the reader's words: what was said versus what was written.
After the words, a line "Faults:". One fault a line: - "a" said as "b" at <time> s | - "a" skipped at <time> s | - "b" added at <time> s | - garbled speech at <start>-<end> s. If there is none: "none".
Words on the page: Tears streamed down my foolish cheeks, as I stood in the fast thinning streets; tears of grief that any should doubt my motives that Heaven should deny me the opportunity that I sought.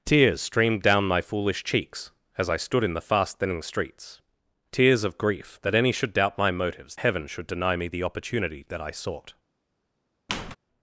Tears streamed down my foolish cheeks, as I stood in the fast thinning streets; tears of grief that any should doubt my motives Heaven should deny me the opportunity that I sought.
Faults:
- "that" skipped at 7.0 s